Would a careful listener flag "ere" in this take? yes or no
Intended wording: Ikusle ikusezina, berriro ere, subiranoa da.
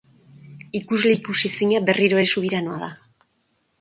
no